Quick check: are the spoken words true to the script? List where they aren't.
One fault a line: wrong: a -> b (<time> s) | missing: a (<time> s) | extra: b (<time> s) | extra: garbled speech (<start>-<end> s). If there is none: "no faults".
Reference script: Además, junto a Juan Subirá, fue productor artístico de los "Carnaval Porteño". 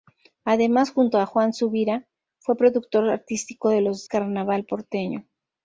no faults